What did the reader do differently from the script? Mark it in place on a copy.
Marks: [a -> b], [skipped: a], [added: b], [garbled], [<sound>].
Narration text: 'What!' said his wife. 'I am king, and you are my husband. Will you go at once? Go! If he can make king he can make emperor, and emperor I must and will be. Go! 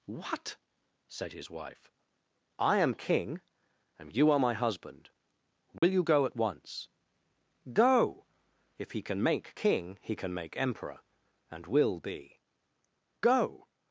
'What!' said his wife. 'I am king, and you are my husband. Will [dropout] you go at once? Go! If he can make king he can make emperor, and [skipped: emperor I must and] will be. Go!